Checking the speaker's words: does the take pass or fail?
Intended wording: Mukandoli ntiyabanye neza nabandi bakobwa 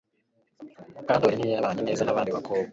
pass